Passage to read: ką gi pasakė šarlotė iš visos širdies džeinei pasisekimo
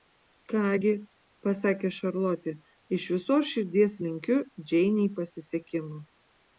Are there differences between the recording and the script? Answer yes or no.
yes